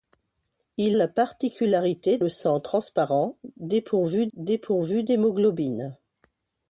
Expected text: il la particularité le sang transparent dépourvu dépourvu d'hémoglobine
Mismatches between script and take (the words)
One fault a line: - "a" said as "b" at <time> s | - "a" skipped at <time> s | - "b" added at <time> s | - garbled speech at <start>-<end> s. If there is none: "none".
none